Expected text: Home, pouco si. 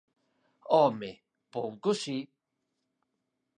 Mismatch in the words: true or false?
false